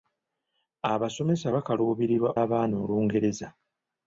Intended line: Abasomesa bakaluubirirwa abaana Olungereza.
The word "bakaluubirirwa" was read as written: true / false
true